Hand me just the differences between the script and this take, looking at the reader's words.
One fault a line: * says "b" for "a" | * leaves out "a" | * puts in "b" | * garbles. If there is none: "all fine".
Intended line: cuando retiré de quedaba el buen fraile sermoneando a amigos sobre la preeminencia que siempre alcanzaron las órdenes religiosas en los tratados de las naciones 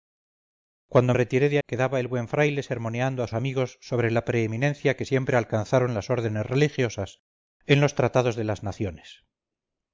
all fine